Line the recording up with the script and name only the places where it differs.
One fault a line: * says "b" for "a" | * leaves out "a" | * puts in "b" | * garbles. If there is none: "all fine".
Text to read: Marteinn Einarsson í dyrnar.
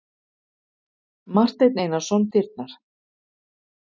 all fine